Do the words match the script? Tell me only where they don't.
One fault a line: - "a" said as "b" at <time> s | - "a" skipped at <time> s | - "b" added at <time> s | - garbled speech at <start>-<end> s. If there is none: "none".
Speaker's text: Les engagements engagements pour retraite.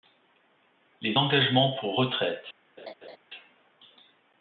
- "engagements" skipped at 1.8 s